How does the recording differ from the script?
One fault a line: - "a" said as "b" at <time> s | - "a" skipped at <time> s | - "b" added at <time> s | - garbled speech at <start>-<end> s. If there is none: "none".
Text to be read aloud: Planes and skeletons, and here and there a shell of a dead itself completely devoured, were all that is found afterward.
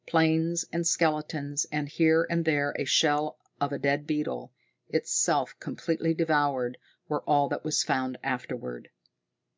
- "beetle" added at 4.1 s
- "is" said as "was" at 7.6 s